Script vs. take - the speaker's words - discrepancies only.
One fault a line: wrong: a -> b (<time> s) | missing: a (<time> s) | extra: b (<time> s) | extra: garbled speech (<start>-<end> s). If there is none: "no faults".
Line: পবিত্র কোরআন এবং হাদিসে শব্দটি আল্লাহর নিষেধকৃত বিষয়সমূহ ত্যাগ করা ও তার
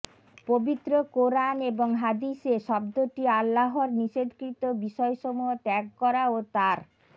no faults